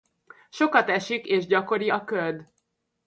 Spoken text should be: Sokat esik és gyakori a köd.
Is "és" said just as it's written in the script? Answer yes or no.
yes